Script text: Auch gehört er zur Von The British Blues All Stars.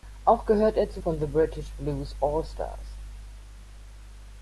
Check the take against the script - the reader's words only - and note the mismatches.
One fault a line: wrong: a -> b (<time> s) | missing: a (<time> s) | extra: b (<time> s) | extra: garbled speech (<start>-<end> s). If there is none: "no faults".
no faults